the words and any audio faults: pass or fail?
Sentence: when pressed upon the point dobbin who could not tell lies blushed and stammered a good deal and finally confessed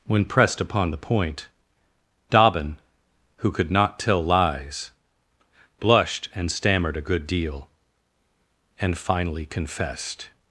pass